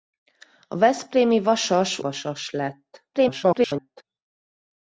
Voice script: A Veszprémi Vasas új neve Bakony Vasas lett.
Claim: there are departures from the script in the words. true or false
true